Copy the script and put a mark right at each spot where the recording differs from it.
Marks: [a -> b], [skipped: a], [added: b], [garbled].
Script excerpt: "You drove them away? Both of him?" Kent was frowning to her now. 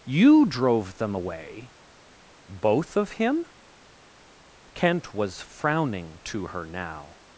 "You drove them away? Both of him?" Kent was frowning to her now.